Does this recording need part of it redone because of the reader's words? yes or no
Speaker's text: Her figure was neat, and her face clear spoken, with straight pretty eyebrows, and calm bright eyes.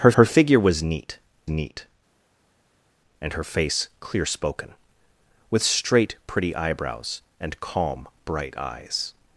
yes